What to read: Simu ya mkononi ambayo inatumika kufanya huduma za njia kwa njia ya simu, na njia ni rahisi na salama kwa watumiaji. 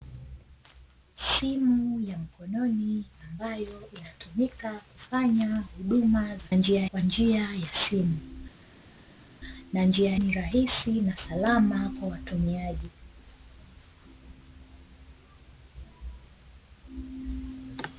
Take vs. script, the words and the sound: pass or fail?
pass